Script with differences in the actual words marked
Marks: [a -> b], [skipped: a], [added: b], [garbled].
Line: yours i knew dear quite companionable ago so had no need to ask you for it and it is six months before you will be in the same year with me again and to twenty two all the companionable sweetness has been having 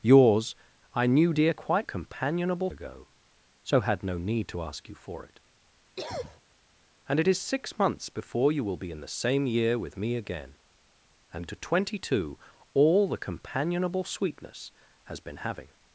yours i knew dear quite companionable ago so had no need to ask you for it and it is six months before you will be in the same year with me again and to twenty two all the companionable sweetness has been having